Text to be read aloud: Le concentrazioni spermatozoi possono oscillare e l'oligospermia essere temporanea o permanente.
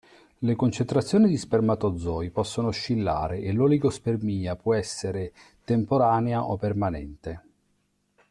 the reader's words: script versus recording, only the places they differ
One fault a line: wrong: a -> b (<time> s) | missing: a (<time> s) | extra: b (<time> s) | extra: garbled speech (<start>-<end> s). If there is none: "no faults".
extra: di (1.3 s)
extra: può (4.5 s)